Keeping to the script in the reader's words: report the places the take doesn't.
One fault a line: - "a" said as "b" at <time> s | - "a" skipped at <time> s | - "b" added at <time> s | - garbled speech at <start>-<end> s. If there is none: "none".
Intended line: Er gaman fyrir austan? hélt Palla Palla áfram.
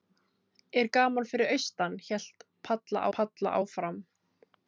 none